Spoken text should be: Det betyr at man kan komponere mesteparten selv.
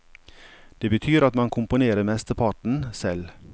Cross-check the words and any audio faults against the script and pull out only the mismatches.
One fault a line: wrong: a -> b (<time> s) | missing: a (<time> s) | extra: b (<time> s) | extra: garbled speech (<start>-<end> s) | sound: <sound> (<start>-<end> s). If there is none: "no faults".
missing: kan (1.5 s)